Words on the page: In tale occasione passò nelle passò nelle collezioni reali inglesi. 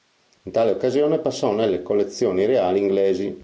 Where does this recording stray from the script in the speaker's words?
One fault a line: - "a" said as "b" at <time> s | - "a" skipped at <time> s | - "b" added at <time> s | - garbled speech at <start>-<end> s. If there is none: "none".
- "passò nelle" skipped at 1.8 s